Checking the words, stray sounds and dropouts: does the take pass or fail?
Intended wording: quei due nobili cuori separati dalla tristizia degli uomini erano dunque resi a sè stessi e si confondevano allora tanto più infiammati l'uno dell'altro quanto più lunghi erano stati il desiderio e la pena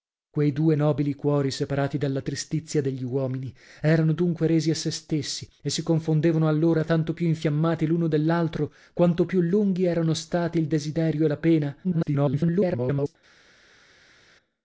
fail